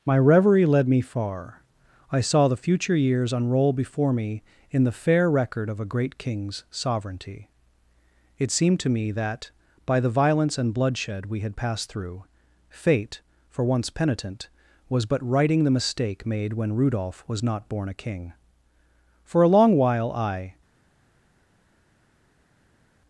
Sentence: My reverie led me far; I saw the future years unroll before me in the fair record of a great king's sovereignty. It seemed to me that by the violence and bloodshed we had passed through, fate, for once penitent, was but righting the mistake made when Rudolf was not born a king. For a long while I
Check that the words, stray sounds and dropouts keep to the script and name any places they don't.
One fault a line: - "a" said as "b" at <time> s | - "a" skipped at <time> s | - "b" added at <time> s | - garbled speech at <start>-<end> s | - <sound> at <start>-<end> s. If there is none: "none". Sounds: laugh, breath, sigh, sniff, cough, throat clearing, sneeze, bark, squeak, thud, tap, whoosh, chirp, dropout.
none